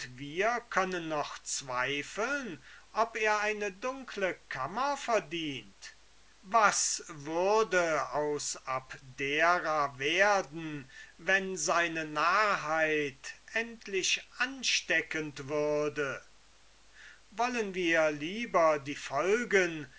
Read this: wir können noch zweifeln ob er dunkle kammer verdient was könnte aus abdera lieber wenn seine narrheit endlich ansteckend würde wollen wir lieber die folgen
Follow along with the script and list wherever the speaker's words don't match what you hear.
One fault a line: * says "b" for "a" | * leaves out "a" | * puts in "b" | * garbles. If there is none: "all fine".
* puts in "eine"
* says "würde" for "könnte"
* says "werden" for "lieber"